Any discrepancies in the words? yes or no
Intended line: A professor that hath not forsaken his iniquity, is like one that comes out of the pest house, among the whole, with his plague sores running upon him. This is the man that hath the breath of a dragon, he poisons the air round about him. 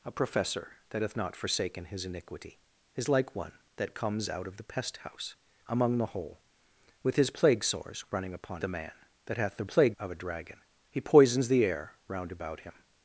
yes